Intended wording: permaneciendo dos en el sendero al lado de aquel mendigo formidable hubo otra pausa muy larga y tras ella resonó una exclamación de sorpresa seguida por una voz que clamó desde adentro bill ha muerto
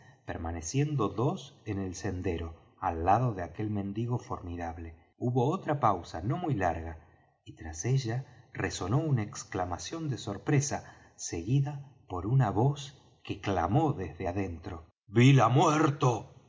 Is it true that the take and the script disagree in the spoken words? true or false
true